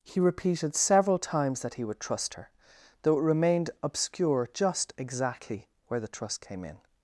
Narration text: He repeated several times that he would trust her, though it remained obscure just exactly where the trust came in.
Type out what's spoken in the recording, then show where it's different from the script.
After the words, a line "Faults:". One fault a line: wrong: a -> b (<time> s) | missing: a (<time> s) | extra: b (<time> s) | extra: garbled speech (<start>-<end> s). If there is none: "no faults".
He repeated several times that he would trust her, though it remained obscure just exactly where the trust came in.
Faults:
no faults